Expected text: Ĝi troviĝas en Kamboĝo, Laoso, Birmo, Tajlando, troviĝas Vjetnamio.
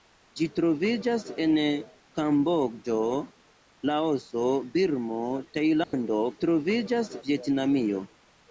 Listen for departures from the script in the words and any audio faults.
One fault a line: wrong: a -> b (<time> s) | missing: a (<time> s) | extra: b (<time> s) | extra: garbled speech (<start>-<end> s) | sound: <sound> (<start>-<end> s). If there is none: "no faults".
sound: dropout (5.8-5.9 s)